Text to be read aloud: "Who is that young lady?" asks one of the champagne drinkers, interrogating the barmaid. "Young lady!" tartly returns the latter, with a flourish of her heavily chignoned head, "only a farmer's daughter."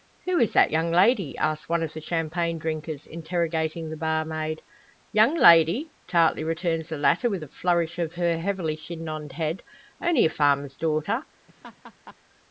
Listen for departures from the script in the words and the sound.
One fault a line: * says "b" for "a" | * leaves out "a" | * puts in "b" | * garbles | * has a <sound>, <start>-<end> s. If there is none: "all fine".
* has a laugh, 11.5-12.2 s